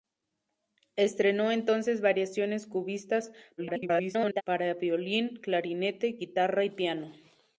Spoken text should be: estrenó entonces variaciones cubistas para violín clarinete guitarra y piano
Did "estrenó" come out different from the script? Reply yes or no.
no